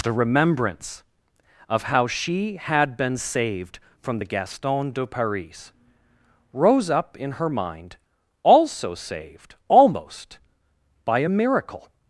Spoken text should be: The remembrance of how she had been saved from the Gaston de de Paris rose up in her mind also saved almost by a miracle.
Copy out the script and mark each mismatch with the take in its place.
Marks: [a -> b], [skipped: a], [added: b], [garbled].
The remembrance of how she had been saved from the Gaston de [skipped: de] Paris rose up in her mind also saved almost by a miracle.